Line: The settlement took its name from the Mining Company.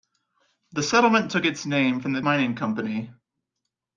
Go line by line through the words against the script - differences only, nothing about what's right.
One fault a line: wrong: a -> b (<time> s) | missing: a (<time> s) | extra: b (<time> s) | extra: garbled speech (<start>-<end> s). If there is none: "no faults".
no faults